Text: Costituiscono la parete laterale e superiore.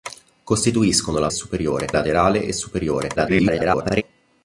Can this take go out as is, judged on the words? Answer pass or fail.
fail